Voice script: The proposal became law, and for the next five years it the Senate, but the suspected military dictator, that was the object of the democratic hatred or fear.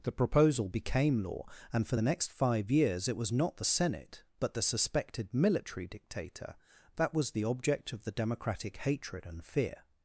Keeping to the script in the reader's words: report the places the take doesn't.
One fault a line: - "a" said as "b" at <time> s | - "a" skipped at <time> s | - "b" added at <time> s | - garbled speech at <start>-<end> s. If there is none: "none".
- "was not" added at 3.2 s
- "or" said as "and" at 9.3 s